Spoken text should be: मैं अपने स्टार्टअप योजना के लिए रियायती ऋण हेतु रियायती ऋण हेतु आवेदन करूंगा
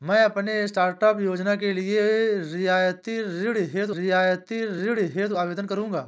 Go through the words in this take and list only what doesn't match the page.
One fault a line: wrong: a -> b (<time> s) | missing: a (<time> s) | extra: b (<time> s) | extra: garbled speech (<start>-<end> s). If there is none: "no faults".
no faults